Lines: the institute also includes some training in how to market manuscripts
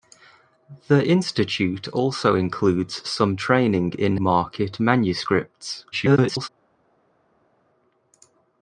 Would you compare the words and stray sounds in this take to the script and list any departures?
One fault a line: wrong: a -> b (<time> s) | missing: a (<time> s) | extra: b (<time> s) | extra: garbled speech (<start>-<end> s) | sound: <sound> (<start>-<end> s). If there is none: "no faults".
missing: how to (4.2 s)
extra: garbled speech (5.9-6.5 s)